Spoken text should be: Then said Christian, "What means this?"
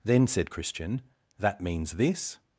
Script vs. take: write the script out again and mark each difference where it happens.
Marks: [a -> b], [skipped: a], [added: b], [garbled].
Then said Christian, ["What -> That] means this?"